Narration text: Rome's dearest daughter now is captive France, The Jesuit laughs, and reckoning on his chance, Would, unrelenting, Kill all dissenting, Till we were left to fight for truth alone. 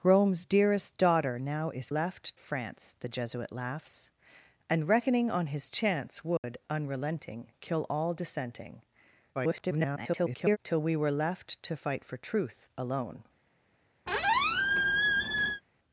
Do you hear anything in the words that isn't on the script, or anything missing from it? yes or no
yes